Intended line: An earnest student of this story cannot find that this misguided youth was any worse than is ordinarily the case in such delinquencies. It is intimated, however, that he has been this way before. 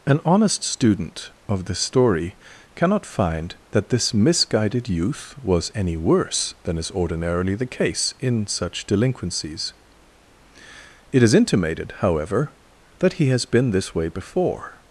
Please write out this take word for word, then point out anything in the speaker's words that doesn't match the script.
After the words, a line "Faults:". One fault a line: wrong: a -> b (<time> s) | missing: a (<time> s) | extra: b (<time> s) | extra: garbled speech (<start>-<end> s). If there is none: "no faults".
An honest student of this story cannot find that this misguided youth was any worse than is ordinarily the case in such delinquencies. It is intimated, however, that he has been this way before.
Faults:
wrong: earnest -> honest (0.2 s)